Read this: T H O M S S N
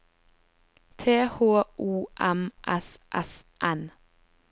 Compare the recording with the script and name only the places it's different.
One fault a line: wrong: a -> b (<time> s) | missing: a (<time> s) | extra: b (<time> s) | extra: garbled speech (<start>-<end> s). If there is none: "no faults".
no faults